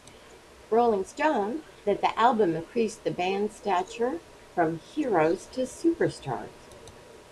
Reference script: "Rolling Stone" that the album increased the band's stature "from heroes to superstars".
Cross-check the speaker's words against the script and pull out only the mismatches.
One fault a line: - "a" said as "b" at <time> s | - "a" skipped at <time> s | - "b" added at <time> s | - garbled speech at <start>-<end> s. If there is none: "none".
none